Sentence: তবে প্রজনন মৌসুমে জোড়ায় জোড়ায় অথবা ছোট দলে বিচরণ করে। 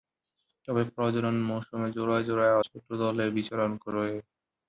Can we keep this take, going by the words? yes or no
no